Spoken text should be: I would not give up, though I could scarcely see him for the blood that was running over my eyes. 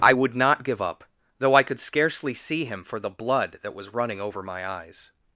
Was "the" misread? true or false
false